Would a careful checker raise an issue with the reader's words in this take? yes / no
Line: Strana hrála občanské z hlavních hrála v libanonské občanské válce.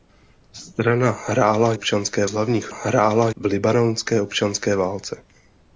no